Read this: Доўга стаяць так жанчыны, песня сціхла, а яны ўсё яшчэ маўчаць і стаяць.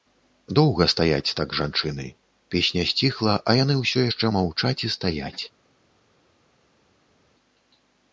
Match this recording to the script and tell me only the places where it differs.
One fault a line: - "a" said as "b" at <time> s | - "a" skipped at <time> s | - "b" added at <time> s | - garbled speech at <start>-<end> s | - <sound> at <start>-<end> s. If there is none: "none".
none